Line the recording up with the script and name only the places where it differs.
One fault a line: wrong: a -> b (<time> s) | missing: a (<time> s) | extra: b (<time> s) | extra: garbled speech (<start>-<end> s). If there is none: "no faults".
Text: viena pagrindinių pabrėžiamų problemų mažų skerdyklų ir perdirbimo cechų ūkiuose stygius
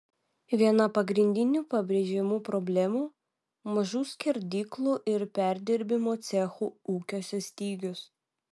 no faults